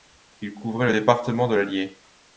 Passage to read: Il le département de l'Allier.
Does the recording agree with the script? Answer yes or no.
no